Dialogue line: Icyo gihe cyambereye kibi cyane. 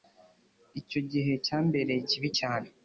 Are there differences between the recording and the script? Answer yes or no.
no